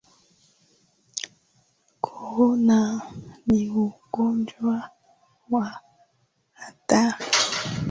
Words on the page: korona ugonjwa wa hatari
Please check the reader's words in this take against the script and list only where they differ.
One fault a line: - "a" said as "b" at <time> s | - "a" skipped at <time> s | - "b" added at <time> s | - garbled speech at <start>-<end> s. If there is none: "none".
- "ni" added at 3.5 s